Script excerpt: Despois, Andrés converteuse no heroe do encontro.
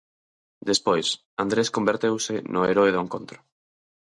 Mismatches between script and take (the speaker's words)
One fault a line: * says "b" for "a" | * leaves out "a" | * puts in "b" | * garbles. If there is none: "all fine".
all fine